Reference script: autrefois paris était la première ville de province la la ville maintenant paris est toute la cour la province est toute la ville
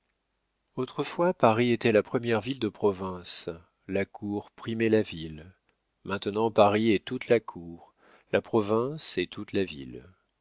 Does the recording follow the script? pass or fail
fail